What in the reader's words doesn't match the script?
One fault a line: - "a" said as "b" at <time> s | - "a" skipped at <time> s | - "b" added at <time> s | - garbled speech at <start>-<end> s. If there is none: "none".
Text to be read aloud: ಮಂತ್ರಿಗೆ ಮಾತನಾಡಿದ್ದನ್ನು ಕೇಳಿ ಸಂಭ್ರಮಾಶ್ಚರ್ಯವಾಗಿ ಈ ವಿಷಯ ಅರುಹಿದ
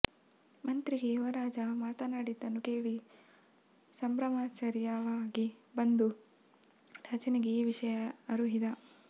- "ಯುವರಾಜ" added at 1.1 s
- "ಬಂದು ರಾಜನಿಗೆ" added at 5.8 s